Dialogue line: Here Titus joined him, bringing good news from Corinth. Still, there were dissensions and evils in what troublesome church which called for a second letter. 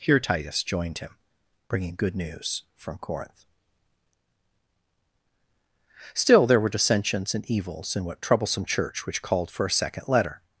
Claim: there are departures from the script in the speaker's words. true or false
false